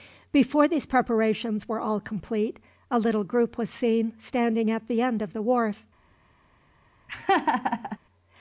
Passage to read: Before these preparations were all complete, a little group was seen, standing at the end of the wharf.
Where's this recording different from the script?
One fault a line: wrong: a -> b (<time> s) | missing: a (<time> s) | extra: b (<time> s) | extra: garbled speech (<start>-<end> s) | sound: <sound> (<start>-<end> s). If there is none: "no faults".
sound: laugh (7.1-8.0 s)